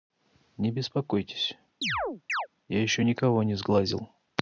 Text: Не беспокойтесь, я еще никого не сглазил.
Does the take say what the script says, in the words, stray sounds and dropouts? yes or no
no